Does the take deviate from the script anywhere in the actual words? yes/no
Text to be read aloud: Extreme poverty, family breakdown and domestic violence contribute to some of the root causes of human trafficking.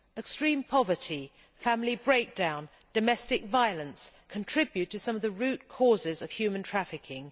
no